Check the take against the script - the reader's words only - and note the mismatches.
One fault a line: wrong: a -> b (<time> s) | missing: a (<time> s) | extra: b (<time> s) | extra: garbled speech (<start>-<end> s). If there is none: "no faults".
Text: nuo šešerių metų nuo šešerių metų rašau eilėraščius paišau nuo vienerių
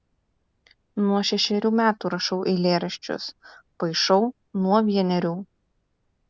missing: nuo šešerių metų (2.1 s)